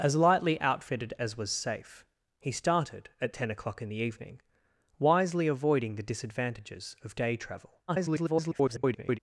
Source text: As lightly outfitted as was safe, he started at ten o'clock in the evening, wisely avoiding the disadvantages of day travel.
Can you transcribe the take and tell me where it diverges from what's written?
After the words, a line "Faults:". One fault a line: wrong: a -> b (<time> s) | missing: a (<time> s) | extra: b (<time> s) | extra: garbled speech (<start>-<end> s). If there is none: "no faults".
As lightly outfitted as was safe, he started at ten o'clock in the evening, wisely avoiding the disadvantages of day travel. [garbled]
Faults:
extra: garbled speech (7.9-9.2 s)